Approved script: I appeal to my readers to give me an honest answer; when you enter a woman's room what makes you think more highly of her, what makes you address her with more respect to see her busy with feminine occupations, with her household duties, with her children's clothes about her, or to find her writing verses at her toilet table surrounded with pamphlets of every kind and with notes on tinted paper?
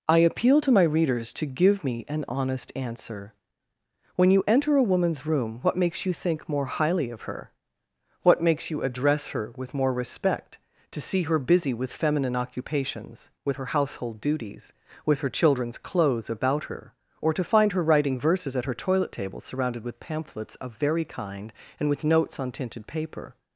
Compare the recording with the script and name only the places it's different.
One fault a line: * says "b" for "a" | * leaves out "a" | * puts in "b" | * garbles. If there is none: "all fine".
* says "very" for "every"